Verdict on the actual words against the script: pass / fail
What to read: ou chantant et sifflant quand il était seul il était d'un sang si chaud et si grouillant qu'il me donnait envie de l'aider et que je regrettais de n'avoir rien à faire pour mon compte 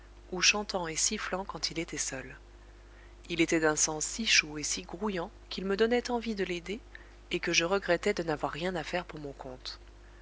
pass